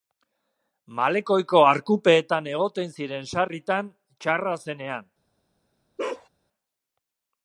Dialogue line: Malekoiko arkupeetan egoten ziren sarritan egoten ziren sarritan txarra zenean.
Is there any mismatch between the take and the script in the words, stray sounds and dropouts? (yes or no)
yes